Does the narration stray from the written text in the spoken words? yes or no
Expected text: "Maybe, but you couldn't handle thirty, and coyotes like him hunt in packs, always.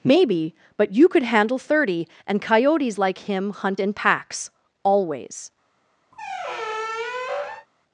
yes